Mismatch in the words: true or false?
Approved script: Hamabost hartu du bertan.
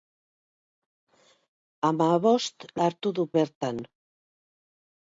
false